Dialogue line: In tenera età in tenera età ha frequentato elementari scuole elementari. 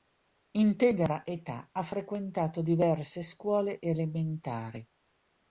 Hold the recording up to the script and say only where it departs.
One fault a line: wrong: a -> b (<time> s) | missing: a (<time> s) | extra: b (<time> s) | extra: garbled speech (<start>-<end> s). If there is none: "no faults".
missing: in tenera età (1.7 s)
wrong: elementari -> diverse (2.6 s)